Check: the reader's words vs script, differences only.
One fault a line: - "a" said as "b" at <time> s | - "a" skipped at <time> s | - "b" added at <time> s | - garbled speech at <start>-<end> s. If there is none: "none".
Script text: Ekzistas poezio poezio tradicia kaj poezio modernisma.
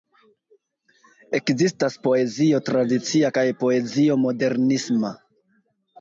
- "poezio" skipped at 2.6 s